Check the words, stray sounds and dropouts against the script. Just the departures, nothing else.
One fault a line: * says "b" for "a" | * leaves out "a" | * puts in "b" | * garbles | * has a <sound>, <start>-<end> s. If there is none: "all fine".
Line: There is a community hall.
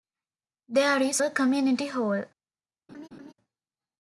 * has a laugh, 2.9-3.3 s